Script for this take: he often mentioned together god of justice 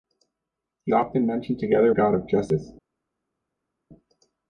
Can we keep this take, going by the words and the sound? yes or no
yes